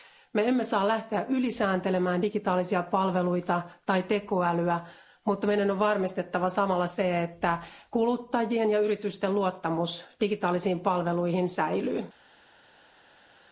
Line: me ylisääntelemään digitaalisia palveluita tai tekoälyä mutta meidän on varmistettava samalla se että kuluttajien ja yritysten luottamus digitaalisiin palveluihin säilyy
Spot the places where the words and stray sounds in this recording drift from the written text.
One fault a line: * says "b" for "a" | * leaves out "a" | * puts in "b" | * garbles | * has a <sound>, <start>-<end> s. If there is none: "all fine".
* puts in "emme saa lähteä"